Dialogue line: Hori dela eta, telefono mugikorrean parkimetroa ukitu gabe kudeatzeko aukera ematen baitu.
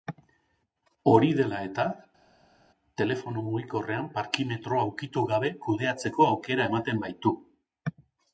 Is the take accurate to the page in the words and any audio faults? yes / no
yes